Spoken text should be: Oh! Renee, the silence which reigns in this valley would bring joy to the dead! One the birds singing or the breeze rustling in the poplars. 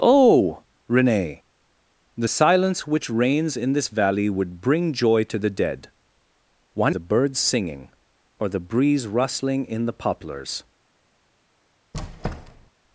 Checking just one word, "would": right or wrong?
right